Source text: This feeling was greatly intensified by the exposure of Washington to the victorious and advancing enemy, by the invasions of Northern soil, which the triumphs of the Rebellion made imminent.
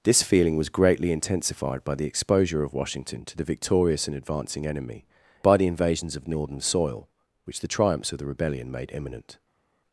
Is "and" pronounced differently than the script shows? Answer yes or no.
no